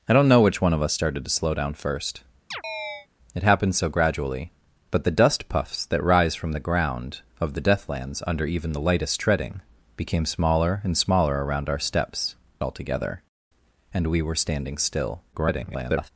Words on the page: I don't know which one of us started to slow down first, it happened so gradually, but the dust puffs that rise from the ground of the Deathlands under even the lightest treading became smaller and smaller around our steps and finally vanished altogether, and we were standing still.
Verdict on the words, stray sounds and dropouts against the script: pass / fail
fail